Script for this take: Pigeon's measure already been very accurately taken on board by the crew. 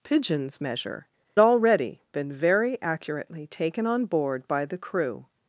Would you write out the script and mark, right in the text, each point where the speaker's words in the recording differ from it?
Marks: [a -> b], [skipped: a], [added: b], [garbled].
Pigeon's measure already been very accurately taken on board by the crew.